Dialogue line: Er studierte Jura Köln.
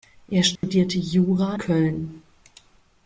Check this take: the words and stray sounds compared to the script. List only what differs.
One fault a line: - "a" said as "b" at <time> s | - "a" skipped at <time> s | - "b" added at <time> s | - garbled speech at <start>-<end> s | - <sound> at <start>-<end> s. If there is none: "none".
- dropout at 0.6-0.6 s